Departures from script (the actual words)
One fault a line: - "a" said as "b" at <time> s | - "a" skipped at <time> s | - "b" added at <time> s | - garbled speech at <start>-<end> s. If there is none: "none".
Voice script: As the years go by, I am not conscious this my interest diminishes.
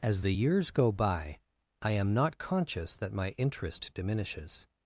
- "this" said as "that" at 3.0 s